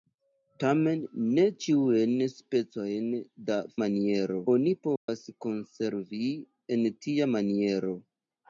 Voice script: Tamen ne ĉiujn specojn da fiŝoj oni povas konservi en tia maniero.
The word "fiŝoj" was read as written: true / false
false